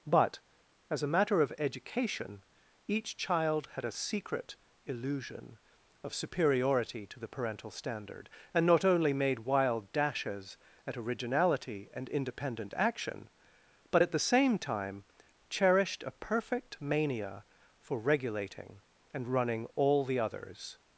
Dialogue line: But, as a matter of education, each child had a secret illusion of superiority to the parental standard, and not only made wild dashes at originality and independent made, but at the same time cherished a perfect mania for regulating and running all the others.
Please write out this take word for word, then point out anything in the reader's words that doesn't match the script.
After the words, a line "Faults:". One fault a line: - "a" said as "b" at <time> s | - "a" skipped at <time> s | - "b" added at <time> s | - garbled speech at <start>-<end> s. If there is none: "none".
But, as a matter of education, each child had a secret illusion of superiority to the parental standard, and not only made wild dashes at originality and independent action, but at the same time cherished a perfect mania for regulating and running all the others.
Faults:
- "made" said as "action" at 12.8 s